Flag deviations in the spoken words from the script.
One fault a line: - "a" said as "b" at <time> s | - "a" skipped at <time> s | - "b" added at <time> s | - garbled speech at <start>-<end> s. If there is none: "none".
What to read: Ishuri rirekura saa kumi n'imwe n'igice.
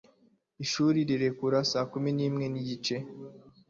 none